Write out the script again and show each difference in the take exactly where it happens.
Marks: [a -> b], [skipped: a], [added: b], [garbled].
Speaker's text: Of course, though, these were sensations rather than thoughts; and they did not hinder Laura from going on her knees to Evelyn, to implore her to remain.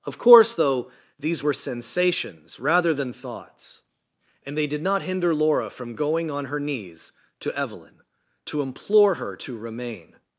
Of course, though, these were sensations rather than thoughts; and they did not hinder Laura from going on her knees to Evelyn, to implore her to remain.